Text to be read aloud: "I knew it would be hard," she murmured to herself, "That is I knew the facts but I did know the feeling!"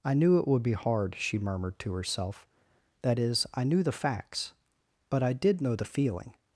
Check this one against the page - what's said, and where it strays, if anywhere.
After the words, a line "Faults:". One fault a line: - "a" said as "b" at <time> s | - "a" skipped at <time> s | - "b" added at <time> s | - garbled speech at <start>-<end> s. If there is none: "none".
"I knew it would be hard," she murmured to herself, "That is I knew the facts but I did know the feeling!"
Faults:
none